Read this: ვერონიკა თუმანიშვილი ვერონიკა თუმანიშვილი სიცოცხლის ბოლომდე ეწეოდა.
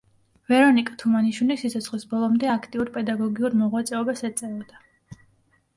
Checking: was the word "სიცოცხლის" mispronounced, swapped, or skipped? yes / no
yes